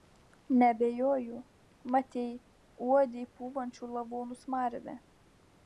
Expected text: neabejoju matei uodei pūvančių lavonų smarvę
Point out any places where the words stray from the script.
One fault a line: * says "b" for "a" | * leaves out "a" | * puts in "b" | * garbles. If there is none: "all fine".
all fine